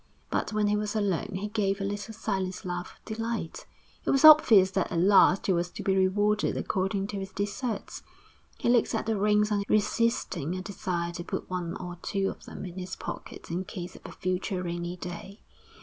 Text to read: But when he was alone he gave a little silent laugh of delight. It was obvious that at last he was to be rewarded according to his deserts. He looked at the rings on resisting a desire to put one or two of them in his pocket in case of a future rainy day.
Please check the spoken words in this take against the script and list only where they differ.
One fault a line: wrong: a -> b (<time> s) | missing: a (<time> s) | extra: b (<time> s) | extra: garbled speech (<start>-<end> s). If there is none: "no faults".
no faults